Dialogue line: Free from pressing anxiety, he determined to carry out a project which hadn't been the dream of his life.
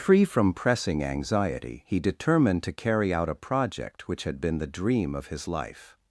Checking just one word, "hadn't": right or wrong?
wrong